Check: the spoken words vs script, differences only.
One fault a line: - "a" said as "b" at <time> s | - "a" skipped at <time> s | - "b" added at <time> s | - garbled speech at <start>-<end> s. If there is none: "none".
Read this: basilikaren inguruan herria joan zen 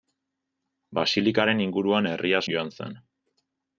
none